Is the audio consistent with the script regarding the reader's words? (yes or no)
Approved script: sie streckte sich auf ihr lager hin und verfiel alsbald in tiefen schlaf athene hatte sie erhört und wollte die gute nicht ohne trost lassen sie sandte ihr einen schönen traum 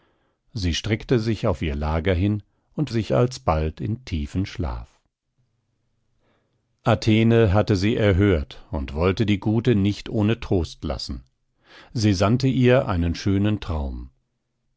no